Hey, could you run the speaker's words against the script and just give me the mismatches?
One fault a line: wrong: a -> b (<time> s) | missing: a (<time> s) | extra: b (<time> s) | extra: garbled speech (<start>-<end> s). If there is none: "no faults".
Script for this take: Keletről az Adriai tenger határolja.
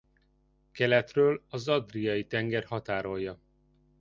no faults